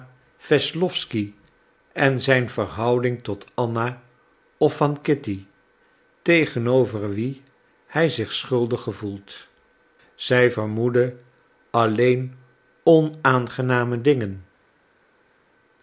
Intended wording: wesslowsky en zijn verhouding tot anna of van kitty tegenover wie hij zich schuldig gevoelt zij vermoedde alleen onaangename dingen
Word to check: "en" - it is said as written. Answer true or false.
true